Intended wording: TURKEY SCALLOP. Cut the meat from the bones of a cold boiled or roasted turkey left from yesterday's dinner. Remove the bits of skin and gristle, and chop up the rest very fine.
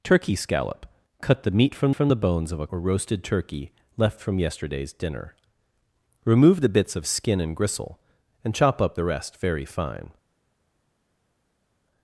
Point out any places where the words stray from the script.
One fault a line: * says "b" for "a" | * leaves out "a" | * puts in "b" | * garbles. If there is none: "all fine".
* puts in "from"
* leaves out "cold boiled"